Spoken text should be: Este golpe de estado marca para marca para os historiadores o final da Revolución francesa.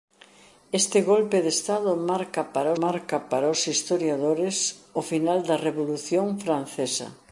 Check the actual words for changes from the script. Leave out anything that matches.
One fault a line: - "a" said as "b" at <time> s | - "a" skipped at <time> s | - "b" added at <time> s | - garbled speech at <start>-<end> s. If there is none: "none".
none